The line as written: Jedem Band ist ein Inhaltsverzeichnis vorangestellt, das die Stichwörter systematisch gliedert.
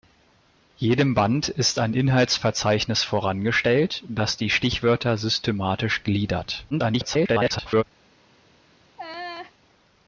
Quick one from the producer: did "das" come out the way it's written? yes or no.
yes